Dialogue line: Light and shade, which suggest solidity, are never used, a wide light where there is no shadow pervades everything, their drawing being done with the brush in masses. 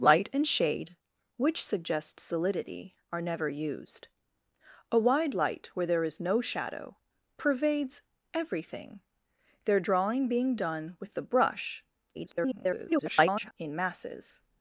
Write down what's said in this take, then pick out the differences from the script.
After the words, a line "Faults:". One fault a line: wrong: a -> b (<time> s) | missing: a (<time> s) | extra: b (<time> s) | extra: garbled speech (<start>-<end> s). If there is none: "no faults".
Light and shade, which suggest solidity, are never used, a wide light where there is no shadow pervades everything, their drawing being done with the brush [garbled] in masses.
Faults:
extra: garbled speech (12.1-13.5 s)